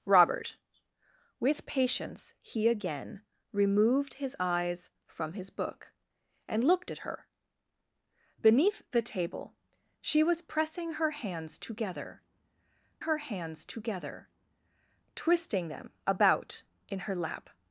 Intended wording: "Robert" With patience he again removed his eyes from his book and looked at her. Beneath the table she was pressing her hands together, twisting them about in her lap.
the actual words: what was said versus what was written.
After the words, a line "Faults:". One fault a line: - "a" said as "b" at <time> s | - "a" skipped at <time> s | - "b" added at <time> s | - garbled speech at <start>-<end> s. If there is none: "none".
"Robert" With patience he again removed his eyes from his book and looked at her. Beneath the table she was pressing her hands together her hands together, twisting them about in her lap.
Faults:
- "her hands together" added at 13.0 s